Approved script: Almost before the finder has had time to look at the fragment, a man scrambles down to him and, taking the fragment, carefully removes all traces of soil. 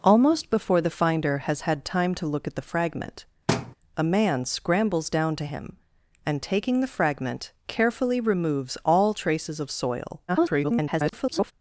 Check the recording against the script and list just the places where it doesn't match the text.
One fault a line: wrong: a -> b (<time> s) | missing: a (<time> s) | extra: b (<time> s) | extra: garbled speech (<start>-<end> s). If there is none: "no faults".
extra: garbled speech (10.3-11.5 s)